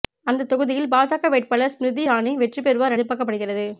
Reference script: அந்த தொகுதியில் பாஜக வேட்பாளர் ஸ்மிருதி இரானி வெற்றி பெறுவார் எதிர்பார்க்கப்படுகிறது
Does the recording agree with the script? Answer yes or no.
yes